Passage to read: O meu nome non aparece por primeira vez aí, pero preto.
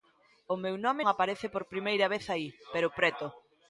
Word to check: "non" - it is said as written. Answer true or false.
false